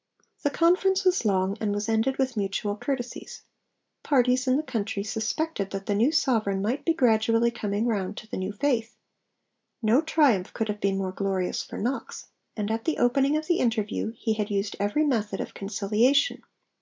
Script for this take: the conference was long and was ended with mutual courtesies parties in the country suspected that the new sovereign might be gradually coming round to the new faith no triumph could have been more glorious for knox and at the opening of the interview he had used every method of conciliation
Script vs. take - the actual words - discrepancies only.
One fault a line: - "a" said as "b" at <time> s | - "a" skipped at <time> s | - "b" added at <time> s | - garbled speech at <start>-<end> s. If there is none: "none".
none